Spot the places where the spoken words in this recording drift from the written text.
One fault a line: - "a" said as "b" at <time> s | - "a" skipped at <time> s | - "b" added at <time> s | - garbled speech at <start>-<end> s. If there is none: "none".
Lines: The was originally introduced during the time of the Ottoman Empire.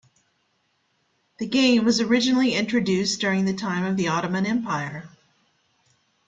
- "game" added at 1.4 s